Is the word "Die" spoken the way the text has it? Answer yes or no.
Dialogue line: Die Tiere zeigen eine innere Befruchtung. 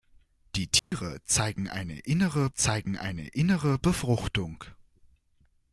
yes